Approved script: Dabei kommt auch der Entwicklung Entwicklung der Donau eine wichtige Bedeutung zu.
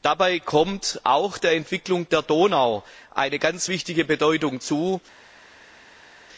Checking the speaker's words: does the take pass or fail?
fail